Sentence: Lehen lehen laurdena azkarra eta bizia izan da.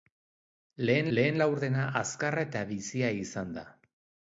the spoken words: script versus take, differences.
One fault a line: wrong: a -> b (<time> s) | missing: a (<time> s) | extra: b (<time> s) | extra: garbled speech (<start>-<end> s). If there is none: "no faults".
no faults